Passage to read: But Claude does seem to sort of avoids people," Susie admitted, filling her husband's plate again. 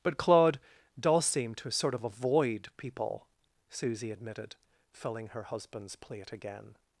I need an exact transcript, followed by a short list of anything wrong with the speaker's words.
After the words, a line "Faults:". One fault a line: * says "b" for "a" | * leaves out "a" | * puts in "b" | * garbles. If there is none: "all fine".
But Claude does seem to sort of avoid people," Susie admitted, filling her husband's plate again.
Faults:
* says "avoid" for "avoids"